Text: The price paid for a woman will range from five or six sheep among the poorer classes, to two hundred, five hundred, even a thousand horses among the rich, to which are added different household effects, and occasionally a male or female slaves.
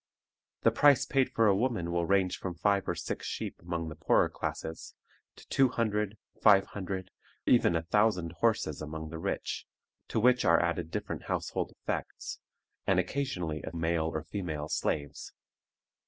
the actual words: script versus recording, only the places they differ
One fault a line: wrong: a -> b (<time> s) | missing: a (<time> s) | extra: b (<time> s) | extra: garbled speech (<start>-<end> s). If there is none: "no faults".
no faults